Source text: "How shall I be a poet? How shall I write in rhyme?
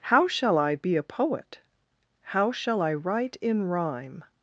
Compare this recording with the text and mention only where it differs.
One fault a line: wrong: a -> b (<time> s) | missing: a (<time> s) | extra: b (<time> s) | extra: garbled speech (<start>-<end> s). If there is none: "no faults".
no faults